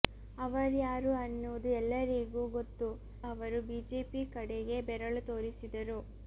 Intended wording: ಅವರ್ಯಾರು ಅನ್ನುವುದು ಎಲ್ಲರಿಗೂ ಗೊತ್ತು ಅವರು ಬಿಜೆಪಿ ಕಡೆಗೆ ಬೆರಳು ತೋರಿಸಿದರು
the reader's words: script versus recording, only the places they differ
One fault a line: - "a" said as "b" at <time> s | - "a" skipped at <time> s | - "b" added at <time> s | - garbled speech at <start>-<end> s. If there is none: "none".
none